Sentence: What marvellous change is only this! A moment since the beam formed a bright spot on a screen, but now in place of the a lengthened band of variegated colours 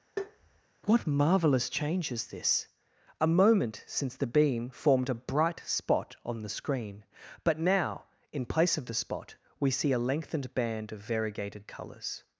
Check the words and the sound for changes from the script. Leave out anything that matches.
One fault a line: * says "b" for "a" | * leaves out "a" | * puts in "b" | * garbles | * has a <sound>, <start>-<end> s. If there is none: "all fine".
* has a tap, 0.2-0.6 s
* leaves out "only"
* says "the" for "a"
* puts in "spot we see"